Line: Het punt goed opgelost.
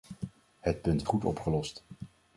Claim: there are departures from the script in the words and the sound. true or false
false